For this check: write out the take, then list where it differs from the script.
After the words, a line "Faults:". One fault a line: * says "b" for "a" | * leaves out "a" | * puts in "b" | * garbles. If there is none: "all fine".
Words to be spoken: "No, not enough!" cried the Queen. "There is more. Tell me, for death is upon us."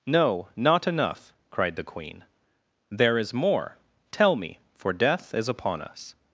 "No, not enough!" cried the Queen. "There is more. Tell me, for death is upon us."
Faults:
all fine